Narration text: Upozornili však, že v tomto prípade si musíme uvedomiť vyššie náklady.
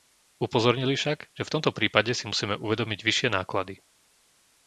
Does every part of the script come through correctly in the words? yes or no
yes